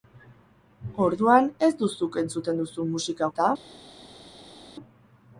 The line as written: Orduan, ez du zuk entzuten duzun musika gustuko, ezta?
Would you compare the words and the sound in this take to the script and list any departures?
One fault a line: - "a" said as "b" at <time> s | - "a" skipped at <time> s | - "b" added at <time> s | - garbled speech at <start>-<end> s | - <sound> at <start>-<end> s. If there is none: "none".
- "gustuko" skipped at 3.3 s